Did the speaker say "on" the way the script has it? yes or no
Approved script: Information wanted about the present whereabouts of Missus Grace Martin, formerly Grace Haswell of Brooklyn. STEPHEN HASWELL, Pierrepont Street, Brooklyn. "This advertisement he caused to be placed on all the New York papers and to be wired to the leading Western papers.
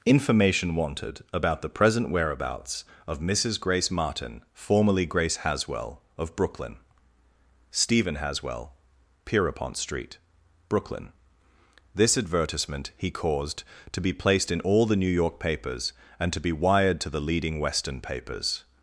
no